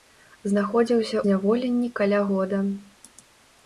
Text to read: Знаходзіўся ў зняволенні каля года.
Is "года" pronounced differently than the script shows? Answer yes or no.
no